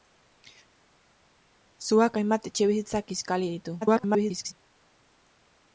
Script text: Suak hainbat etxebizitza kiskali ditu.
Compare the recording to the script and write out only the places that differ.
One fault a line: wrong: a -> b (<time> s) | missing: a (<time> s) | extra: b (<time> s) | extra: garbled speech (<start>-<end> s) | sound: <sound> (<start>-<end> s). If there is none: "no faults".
extra: garbled speech (3.8-4.5 s)